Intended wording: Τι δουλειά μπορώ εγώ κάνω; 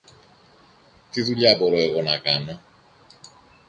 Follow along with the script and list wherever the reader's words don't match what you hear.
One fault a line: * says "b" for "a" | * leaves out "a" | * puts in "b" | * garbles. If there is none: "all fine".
* puts in "να"